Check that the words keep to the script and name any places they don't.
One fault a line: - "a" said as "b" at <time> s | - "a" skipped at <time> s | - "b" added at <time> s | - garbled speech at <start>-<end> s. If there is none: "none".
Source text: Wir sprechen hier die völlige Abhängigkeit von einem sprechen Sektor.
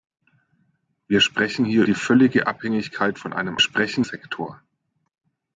none